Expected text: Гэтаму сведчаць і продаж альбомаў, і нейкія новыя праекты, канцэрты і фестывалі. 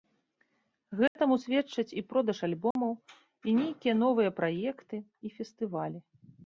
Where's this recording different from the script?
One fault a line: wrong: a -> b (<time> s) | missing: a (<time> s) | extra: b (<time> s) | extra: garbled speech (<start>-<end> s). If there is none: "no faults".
missing: канцэрты (5.0 s)